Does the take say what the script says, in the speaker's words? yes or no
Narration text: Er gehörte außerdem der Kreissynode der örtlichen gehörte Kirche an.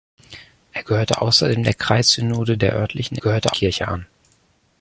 yes